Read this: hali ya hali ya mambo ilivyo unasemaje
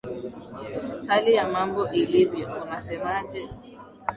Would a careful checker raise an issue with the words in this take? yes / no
yes